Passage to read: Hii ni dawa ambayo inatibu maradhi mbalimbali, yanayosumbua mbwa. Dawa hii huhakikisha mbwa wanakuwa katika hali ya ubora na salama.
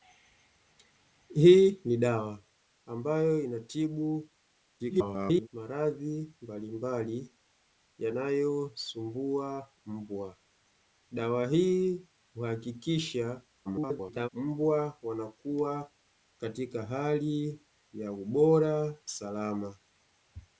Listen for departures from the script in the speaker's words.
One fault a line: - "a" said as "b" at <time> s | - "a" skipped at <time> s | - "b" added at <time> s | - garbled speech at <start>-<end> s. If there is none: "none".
- garbled speech at 4.8-5.5 s
- garbled speech at 13.6-14.3 s
- "na" skipped at 18.9 s